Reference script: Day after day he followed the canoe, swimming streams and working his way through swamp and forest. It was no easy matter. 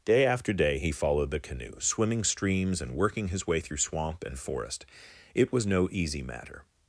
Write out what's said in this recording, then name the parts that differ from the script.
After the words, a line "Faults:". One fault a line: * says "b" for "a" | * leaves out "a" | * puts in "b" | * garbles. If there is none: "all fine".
Day after day he followed the canoe, swimming streams and working his way through swamp and forest. It was no easy matter.
Faults:
all fine